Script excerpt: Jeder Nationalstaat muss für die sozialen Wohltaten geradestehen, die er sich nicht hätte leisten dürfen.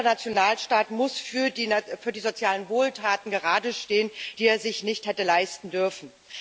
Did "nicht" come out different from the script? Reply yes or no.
no